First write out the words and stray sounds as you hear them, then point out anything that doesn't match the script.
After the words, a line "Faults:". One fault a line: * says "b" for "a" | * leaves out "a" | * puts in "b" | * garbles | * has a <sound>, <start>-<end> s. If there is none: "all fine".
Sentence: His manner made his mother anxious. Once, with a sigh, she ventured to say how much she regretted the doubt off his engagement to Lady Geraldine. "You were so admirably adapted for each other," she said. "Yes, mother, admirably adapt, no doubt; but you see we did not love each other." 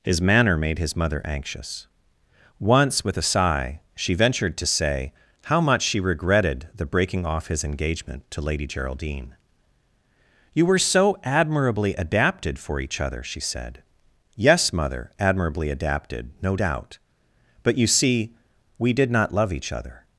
His manner made his mother anxious. Once, with a sigh, she ventured to say how much she regretted the breaking off his engagement to Lady Geraldine. "You were so admirably adapted for each other," she said. "Yes, mother, admirably adapted, no doubt; but you see we did not love each other."
Faults:
* says "breaking" for "doubt"
* says "adapted" for "adapt"